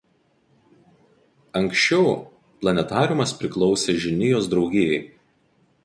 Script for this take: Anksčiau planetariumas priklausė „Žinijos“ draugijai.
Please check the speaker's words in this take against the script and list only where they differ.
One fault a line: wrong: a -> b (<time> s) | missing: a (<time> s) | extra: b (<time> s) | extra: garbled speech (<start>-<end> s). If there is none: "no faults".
no faults